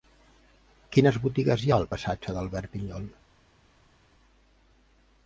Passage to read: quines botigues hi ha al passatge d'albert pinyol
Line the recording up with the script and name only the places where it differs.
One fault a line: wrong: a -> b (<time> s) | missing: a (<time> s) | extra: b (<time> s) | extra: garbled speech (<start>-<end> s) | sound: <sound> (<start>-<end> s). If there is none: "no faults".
no faults